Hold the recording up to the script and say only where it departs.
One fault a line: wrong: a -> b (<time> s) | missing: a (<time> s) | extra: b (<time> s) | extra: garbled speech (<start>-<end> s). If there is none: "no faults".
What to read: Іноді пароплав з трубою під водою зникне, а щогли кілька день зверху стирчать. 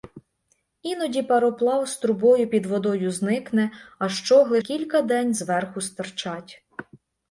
no faults